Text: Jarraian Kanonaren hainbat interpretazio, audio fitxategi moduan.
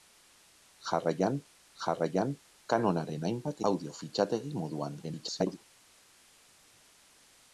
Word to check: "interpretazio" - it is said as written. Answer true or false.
false